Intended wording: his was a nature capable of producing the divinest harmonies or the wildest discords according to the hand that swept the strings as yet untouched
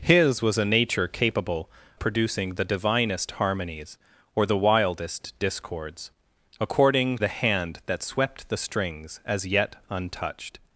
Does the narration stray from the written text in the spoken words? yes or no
yes